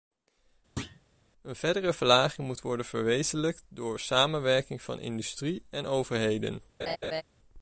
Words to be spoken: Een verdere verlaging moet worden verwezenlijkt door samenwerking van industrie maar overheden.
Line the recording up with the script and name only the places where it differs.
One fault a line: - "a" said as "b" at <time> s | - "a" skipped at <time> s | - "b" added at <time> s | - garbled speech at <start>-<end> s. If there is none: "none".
- "maar" said as "en" at 5.7 s